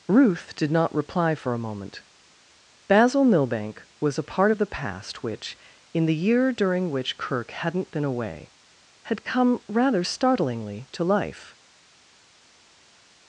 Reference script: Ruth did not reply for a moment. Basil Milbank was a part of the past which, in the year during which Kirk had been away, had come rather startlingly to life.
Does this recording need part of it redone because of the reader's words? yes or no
yes